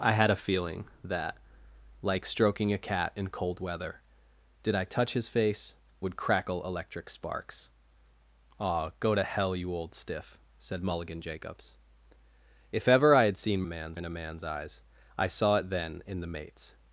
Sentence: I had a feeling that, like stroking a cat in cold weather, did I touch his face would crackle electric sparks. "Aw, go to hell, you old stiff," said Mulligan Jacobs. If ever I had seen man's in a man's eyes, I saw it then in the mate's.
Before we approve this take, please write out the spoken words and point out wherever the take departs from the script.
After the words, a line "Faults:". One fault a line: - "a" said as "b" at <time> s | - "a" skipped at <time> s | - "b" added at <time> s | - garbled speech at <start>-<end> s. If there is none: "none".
I had a feeling that, like stroking a cat in cold weather, did I touch his face would crackle electric sparks. "Aw, go to hell, you old stiff," said Mulligan Jacobs. If ever I had seen man's in a man's eyes, I saw it then in the mate's.
Faults:
none